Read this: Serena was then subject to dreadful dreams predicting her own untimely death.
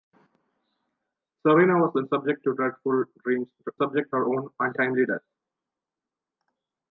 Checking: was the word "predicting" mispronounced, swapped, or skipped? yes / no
yes